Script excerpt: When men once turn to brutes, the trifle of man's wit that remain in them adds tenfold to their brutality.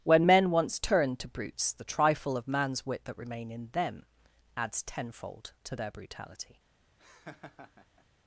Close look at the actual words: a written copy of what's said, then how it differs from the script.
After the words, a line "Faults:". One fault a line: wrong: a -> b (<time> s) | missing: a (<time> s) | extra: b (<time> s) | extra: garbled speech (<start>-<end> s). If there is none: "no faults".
When men once turn to brutes, the trifle of man's wit that remain in them adds tenfold to their brutality.
Faults:
no faults